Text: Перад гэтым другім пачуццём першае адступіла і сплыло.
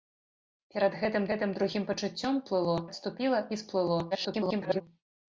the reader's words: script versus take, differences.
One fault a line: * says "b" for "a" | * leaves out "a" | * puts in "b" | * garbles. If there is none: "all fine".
* puts in "гэтым"
* says "сплыло" for "першае"
* garbles